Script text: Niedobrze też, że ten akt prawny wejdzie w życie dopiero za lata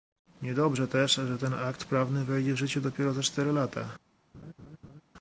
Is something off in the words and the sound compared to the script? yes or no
yes